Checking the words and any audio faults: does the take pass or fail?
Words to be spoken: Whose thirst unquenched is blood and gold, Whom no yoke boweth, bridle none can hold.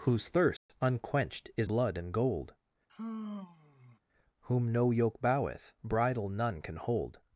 fail